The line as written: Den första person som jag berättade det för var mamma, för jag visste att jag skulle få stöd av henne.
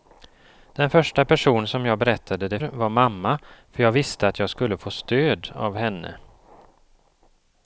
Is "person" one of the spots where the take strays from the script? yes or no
no